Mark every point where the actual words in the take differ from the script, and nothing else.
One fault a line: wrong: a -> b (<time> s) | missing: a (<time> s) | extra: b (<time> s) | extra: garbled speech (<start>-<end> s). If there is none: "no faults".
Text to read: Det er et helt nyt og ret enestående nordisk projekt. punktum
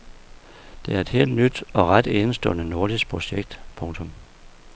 no faults